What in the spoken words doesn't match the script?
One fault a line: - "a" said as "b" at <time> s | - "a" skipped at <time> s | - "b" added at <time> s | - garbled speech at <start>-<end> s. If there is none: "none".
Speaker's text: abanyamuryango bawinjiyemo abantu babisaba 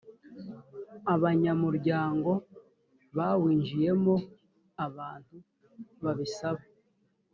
none